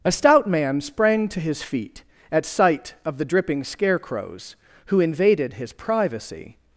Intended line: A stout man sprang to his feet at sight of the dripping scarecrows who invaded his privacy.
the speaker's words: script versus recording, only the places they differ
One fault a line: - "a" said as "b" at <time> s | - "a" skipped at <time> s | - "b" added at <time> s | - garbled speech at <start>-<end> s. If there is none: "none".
none